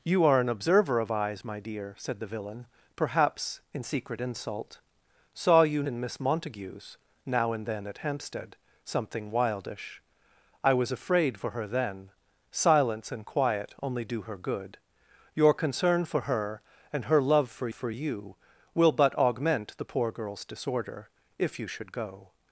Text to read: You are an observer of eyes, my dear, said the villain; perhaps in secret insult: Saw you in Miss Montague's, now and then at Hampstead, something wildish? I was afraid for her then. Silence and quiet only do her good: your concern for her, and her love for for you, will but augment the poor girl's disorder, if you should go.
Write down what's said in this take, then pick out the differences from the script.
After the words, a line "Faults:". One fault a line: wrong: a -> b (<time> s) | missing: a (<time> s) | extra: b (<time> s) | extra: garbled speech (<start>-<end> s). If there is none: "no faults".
You are an observer of eyes, my dear, said the villain; perhaps in secret insult: Saw you in Miss Montague's, now and then at Hampstead, something wildish? I was afraid for her then. Silence and quiet only do her good: your concern for her, and her love for for you, will but augment the poor girl's disorder, if you should go.
Faults:
no faults